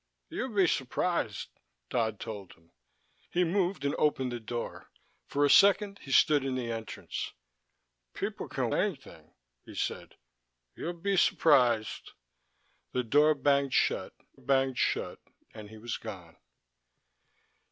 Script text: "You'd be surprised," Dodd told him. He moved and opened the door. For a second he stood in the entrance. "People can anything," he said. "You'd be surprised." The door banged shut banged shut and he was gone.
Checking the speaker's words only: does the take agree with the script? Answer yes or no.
yes